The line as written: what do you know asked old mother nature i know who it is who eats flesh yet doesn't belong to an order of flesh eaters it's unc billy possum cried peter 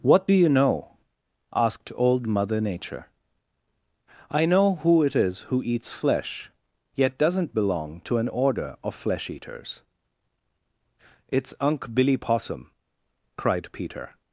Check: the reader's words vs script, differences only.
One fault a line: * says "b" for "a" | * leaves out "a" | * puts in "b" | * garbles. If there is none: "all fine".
all fine